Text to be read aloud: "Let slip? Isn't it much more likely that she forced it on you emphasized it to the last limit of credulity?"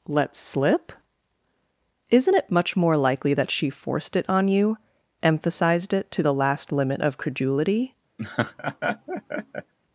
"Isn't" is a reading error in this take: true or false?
false